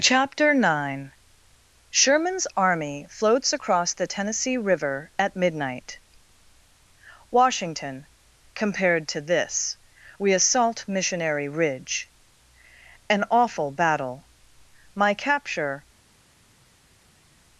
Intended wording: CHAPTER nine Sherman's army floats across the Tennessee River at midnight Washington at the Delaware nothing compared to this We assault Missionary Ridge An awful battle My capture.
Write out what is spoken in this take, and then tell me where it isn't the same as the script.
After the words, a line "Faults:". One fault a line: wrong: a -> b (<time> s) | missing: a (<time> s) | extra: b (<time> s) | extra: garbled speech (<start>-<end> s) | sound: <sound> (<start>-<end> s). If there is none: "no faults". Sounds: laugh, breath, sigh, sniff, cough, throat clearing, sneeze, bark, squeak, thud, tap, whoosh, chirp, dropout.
CHAPTER nine Sherman's army floats across the Tennessee River at midnight Washington compared to this We assault Missionary Ridge An awful battle My capture.
Faults:
missing: at the Delaware nothing (8.1 s)